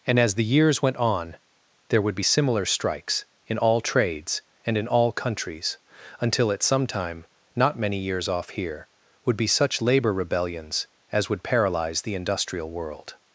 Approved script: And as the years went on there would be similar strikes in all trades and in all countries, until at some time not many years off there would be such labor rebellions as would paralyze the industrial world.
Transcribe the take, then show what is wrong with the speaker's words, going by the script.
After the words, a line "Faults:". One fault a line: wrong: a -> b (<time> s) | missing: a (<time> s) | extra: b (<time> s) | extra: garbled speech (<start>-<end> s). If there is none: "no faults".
And as the years went on there would be similar strikes in all trades and in all countries, until at some time not many years off here would be such labor rebellions as would paralyze the industrial world.
Faults:
wrong: there -> here (8.5 s)